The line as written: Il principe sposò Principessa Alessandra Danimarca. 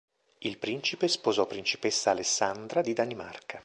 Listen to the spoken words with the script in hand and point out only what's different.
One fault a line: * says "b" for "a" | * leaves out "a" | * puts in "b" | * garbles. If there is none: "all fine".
* puts in "di"